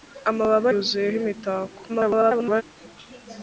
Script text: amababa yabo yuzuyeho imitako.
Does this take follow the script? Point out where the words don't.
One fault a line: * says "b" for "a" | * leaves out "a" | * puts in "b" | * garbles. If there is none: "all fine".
* leaves out "yabo"
* garbles